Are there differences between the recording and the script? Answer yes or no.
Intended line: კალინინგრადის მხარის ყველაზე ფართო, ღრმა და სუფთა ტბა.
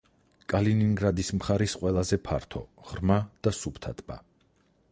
no